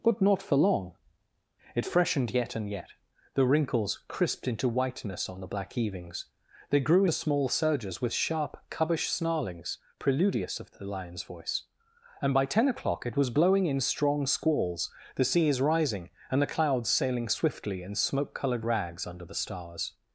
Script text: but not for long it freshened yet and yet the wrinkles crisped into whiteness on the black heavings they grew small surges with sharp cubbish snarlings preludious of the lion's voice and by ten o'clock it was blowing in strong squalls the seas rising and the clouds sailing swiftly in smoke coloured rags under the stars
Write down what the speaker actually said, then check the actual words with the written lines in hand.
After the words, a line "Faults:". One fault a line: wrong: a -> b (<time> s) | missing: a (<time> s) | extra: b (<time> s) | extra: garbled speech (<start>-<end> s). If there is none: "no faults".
but not for long it freshened yet and yet the wrinkles crisped into whiteness on the black heavings they grew small surges with sharp cubbish snarlings preludious of the lion's voice and by ten o'clock it was blowing in strong squalls the seas rising and the clouds sailing swiftly in smoke coloured rags under the stars
Faults:
no faults